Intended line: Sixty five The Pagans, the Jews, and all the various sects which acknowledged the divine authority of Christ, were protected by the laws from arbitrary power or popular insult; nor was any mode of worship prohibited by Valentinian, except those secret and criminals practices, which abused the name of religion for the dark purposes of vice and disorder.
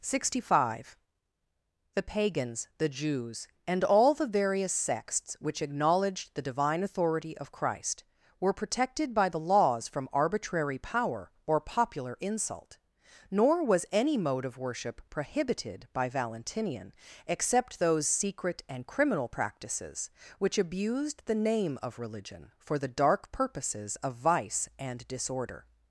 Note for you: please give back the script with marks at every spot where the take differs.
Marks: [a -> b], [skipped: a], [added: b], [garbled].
Sixty five The Pagans, the Jews, and all the various sects which acknowledged the divine authority of Christ, were protected by the laws from arbitrary power or popular insult; nor was any mode of worship prohibited by Valentinian, except those secret and [criminals -> criminal] practices, which abused the name of religion for the dark purposes of vice and disorder.